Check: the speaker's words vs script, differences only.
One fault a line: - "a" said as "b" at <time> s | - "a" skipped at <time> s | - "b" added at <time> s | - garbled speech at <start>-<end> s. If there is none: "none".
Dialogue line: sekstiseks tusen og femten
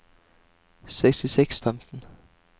- "tusen og" skipped at 1.6 s